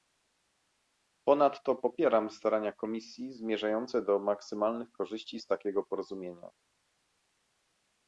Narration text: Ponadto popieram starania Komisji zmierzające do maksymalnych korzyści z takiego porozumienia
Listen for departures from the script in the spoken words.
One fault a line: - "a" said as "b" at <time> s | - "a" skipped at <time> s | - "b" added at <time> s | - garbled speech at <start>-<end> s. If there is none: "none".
none